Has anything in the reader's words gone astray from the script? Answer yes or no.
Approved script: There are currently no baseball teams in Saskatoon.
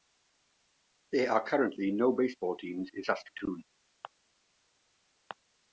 no